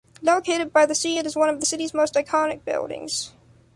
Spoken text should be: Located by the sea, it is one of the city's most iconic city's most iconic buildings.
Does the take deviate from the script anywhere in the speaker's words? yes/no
yes